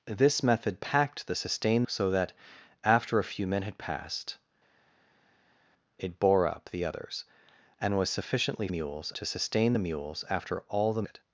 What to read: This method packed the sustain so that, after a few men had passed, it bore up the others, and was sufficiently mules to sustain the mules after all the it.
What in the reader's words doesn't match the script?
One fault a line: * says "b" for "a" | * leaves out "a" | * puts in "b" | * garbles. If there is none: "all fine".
all fine